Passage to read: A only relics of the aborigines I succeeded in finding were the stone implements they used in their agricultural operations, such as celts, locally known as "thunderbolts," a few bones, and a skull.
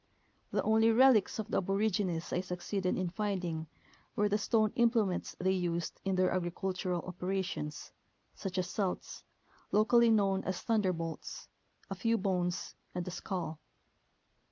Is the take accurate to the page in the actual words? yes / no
no